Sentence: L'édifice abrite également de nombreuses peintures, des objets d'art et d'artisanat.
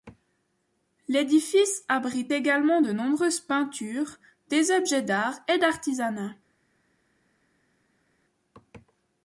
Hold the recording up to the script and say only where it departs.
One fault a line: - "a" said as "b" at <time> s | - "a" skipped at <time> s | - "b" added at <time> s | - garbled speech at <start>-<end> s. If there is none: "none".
none